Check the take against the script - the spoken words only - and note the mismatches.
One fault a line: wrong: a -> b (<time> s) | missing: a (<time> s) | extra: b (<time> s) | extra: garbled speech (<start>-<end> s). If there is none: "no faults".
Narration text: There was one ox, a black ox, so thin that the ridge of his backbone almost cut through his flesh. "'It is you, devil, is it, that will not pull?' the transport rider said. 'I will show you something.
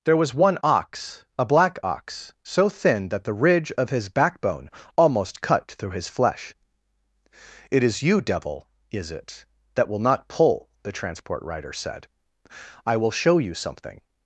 no faults